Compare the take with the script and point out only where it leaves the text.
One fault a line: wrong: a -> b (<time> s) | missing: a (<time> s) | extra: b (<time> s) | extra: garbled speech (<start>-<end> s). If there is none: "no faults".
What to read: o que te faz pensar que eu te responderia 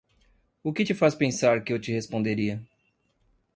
no faults